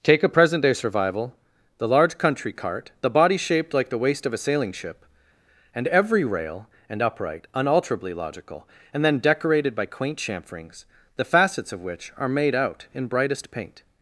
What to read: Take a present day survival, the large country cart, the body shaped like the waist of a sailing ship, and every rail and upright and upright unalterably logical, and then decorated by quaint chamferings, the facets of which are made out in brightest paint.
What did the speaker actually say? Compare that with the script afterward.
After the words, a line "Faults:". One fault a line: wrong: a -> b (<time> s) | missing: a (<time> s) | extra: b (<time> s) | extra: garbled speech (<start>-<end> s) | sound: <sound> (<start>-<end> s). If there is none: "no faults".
Take a present day survival, the large country cart, the body shaped like the waist of a sailing ship, and every rail and upright unalterably logical, and then decorated by quaint chamferings, the facets of which are made out in brightest paint.
Faults:
missing: and upright (7.5 s)